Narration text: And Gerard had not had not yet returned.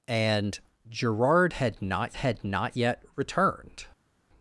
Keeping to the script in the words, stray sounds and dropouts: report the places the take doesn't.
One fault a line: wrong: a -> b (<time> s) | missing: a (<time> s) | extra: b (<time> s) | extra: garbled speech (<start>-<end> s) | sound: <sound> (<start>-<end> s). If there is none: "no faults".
no faults